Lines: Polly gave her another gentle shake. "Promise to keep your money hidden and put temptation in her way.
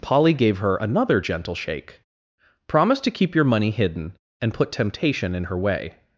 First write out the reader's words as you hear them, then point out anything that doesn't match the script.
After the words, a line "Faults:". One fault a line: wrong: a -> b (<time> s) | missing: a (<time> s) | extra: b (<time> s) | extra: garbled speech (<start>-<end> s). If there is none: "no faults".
Polly gave her another gentle shake. "Promise to keep your money hidden and put temptation in her way.
Faults:
no faults